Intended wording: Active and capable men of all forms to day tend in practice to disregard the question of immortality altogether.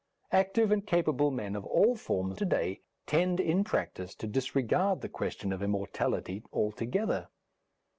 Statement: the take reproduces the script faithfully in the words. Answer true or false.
true